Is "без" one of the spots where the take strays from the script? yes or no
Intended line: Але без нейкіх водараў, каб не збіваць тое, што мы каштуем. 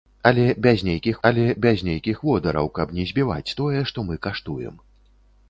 no